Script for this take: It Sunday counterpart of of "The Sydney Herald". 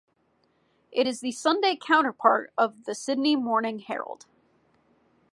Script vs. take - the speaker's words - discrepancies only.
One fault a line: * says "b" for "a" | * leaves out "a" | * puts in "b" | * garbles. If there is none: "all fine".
* puts in "is the"
* leaves out "of"
* puts in "Morning"